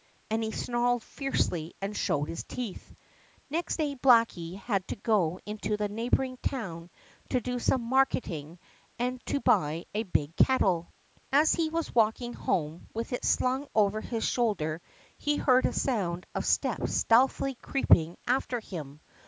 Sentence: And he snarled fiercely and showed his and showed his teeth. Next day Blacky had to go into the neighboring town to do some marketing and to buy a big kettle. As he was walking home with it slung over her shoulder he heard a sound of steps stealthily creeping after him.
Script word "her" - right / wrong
wrong